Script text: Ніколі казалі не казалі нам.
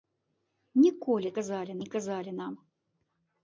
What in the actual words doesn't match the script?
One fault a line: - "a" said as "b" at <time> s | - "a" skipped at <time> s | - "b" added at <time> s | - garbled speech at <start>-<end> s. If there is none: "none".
none